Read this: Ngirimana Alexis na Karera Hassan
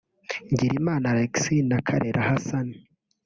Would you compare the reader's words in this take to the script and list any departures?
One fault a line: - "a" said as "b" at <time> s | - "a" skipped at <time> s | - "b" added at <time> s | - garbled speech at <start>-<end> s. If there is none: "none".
none